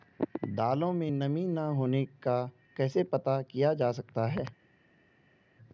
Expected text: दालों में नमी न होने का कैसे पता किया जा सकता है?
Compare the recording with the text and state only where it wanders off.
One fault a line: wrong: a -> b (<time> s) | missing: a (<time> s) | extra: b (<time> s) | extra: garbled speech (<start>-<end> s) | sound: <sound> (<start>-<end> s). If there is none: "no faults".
no faults